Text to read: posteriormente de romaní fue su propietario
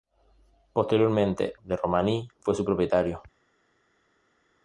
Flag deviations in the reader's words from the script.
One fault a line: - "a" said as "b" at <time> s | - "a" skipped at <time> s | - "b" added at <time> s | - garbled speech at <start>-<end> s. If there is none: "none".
none